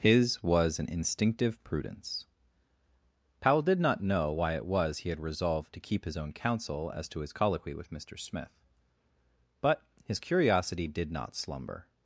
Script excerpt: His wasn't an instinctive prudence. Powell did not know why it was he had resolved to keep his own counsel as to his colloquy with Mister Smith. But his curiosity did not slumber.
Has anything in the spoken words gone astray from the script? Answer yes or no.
yes